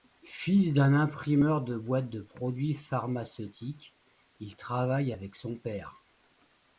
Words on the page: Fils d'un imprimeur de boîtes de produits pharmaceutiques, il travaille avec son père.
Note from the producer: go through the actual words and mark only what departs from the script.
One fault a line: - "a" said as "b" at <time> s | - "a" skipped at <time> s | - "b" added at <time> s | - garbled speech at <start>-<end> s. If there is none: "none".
none